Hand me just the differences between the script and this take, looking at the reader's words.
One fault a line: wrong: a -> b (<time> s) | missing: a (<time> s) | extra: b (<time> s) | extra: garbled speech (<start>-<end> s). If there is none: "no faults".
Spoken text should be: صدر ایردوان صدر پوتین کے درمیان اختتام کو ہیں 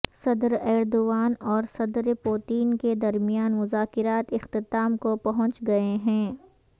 extra: اور (1.5 s)
extra: مذاکرات (3.5 s)
extra: پہنچ گئے (5.2 s)